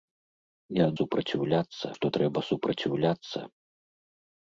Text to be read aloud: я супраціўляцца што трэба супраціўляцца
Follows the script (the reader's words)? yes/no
yes